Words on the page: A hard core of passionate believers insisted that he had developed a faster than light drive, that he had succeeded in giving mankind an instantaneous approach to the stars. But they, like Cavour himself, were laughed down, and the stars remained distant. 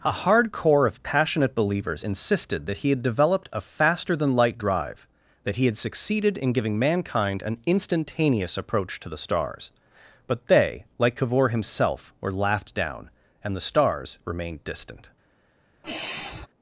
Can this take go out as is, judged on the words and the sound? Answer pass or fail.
fail